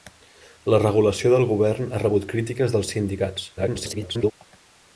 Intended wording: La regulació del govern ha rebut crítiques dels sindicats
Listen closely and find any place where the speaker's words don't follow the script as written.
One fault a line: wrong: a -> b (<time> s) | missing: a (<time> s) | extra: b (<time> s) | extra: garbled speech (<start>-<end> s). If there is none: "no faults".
extra: garbled speech (3.6-4.3 s)